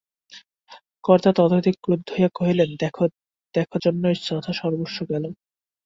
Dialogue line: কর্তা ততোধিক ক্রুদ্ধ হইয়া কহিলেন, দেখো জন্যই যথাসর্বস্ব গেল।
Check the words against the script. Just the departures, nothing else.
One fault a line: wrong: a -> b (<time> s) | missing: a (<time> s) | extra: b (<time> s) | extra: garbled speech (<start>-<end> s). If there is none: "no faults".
no faults